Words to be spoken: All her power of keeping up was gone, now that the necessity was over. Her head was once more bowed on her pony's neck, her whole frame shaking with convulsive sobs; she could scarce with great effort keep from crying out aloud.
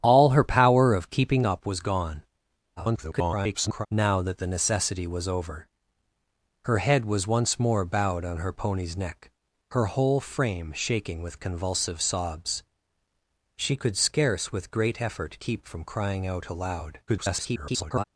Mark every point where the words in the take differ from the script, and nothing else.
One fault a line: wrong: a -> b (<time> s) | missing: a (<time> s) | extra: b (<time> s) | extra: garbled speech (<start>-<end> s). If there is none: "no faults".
extra: garbled speech (2.8-3.9 s)
extra: garbled speech (17.1-18.0 s)